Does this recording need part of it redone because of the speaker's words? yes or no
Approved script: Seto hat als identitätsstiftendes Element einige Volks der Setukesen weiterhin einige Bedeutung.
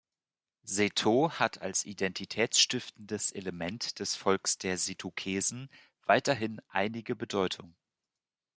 yes